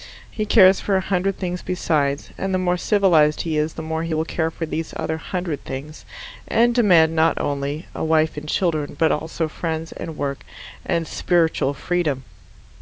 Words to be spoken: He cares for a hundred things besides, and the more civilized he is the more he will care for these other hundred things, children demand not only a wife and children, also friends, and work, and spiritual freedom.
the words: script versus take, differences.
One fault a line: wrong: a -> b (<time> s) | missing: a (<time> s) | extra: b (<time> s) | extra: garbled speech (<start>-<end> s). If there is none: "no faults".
wrong: children -> and (6.5 s)
extra: but (9.0 s)